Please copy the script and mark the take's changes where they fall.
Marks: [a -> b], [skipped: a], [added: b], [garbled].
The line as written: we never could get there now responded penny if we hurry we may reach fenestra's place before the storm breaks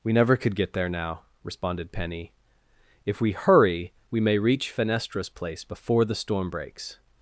we never could get there now responded penny if we hurry we may reach fenestra's place before the storm breaks